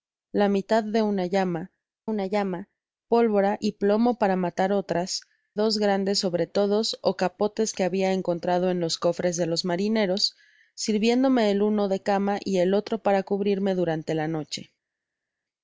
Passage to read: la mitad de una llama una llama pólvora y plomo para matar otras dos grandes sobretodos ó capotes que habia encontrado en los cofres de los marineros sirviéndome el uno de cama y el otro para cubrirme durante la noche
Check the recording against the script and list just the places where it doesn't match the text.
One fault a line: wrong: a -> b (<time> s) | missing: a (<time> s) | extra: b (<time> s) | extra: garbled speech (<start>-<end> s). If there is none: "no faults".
no faults